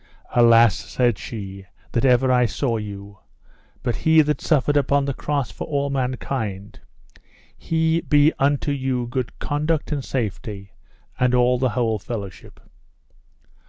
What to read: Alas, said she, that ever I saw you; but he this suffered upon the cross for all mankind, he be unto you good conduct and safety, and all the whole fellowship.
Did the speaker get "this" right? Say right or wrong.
wrong